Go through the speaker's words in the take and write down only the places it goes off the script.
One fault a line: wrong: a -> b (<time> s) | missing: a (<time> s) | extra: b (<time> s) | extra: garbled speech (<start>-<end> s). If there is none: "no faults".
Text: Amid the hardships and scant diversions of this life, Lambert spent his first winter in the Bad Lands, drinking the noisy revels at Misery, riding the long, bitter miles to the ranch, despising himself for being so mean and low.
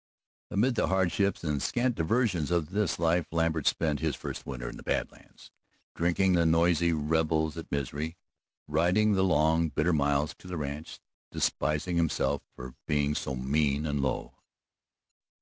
no faults